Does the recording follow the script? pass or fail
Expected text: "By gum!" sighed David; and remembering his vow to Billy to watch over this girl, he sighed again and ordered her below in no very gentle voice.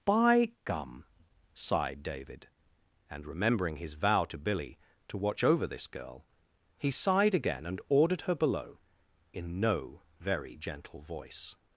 pass